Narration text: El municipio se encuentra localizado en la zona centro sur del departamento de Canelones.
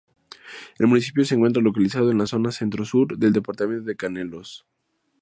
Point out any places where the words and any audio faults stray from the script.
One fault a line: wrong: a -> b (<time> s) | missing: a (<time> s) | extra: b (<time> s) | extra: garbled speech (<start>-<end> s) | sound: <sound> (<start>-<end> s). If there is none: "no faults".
no faults